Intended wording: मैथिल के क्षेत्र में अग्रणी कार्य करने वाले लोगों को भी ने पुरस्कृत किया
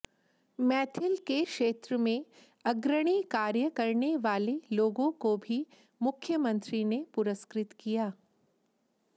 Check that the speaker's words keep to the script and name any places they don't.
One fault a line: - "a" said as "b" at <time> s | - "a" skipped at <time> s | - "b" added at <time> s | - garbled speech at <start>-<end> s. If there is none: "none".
- "मुख्यमंत्री" added at 6.0 s